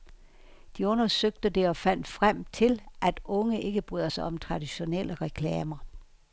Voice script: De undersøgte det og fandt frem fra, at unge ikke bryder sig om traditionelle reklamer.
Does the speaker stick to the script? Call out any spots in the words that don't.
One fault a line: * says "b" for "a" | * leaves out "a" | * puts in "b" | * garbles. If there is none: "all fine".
* says "til" for "fra"